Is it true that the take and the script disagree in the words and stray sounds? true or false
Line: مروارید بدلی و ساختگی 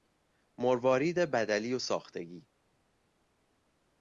false